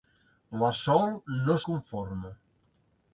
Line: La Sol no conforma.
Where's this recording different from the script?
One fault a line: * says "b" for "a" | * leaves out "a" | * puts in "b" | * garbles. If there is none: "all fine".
all fine